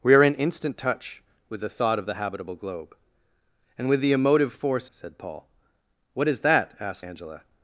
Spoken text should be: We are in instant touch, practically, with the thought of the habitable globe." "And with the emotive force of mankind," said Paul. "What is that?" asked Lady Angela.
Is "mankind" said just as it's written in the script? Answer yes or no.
no